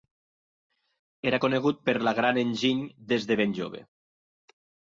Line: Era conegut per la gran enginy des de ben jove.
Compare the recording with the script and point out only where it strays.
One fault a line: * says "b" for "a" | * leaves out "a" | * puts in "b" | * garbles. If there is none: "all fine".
all fine